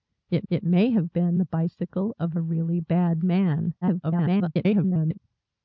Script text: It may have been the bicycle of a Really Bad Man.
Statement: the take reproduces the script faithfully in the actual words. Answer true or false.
false